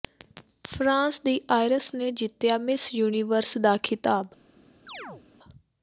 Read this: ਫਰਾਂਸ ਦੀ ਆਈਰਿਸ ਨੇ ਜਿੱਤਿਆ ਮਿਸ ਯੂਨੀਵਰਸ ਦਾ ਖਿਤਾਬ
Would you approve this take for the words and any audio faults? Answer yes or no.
no